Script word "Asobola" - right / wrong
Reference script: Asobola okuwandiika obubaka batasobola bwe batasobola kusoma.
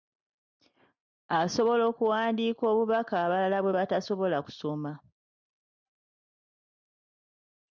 right